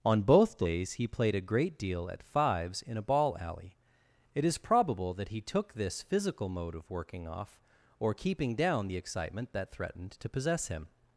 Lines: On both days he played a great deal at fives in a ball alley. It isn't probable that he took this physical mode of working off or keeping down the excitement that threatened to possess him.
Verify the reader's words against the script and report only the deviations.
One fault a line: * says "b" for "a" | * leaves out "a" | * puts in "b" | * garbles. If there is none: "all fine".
* says "is" for "isn't"